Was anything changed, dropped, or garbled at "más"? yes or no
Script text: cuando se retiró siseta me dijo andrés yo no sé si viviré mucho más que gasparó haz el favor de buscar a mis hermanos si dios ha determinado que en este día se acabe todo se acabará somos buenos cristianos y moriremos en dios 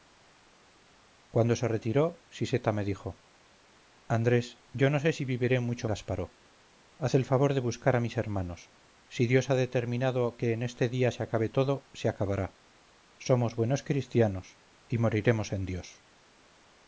yes